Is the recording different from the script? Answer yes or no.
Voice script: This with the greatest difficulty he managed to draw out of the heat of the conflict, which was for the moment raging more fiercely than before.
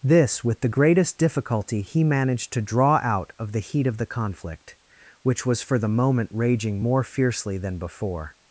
no